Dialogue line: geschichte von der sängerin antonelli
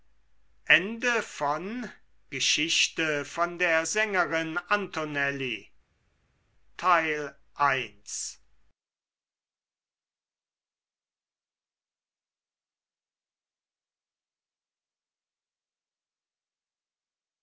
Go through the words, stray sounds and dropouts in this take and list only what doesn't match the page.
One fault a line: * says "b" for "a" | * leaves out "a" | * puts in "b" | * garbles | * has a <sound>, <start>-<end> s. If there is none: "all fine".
all fine